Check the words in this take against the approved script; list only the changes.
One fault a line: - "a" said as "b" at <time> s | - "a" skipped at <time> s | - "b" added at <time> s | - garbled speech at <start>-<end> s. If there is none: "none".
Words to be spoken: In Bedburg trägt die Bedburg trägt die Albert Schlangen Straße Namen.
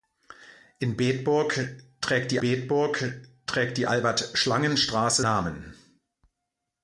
none